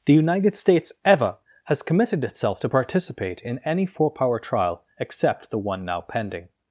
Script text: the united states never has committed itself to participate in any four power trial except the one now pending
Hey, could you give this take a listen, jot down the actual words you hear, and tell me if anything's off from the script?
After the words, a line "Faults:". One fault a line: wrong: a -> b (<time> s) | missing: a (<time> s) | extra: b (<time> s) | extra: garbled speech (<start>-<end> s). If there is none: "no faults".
the united states ever has committed itself to participate in any four power trial except the one now pending
Faults:
wrong: never -> ever (1.1 s)